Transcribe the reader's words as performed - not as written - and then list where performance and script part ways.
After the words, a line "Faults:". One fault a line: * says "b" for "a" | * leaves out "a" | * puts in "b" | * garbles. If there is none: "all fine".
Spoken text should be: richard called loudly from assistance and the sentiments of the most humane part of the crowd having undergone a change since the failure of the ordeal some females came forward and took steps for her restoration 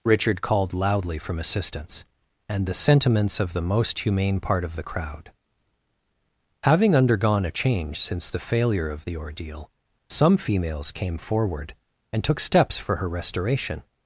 richard called loudly from assistance and the sentiments of the most humane part of the crowd having undergone a change since the failure of the ordeal some females came forward and took steps for her restoration
Faults:
all fine